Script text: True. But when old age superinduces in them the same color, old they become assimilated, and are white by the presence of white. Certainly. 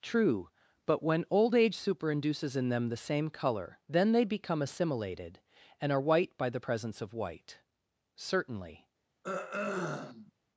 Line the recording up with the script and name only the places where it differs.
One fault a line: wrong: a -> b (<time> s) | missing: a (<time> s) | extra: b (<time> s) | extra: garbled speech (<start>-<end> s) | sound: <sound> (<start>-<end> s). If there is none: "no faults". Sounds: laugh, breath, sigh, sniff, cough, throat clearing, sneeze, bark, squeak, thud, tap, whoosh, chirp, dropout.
wrong: old -> then (3.9 s)
sound: throat clearing (9.2-10.3 s)